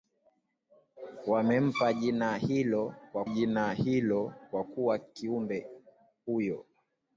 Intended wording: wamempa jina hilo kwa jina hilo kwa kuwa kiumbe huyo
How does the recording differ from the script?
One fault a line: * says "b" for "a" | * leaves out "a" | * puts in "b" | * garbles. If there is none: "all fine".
all fine